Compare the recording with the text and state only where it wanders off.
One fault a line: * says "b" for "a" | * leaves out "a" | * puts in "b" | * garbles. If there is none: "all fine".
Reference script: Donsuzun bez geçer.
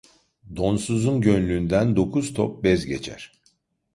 * puts in "gönlünden dokuz top"